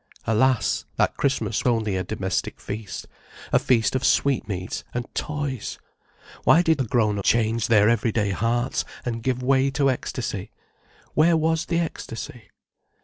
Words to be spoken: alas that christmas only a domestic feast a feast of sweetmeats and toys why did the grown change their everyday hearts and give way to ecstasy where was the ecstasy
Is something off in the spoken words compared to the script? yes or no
no